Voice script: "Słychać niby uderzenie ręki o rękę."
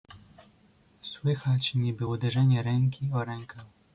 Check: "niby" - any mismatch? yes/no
no